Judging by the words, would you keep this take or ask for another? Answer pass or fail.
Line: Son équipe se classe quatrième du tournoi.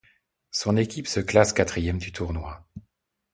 pass